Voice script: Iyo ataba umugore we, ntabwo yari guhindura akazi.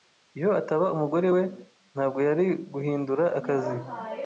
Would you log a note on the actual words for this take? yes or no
no